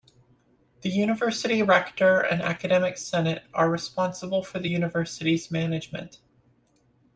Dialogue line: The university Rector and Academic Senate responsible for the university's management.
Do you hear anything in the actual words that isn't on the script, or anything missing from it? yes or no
yes